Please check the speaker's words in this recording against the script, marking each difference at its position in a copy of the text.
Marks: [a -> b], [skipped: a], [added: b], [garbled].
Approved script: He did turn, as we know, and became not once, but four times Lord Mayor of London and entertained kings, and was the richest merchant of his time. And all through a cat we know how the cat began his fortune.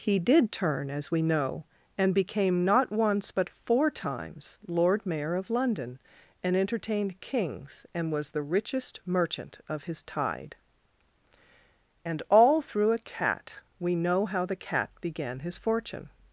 He did turn, as we know, and became not once, but four times Lord Mayor of London and entertained kings, and was the richest merchant of his [time. -> tide] And all through a cat we know how the cat began his fortune.